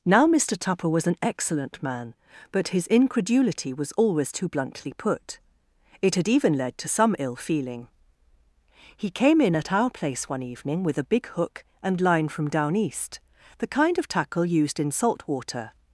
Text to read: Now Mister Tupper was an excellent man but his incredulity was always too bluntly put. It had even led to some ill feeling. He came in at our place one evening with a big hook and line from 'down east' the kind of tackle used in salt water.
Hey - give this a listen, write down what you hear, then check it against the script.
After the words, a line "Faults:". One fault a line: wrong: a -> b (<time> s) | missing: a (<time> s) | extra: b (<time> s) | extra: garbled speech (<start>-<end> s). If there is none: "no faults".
Now Mister Tupper was an excellent man but his incredulity was always too bluntly put. It had even led to some ill feeling. He came in at our place one evening with a big hook and line from 'down east' the kind of tackle used in salt water.
Faults:
no faults